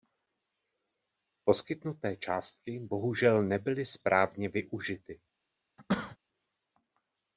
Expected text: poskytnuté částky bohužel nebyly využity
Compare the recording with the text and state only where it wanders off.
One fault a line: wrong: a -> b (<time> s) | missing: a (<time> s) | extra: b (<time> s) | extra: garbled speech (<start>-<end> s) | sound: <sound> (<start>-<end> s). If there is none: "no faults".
extra: správně (3.9 s)
sound: cough (5.8-6.2 s)